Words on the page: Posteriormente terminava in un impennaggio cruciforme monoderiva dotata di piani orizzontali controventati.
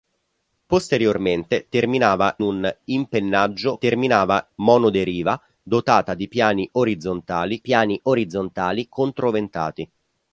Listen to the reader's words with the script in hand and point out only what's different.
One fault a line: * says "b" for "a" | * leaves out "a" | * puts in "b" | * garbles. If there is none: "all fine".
* leaves out "in"
* says "terminava" for "cruciforme"
* puts in "piani orizzontali"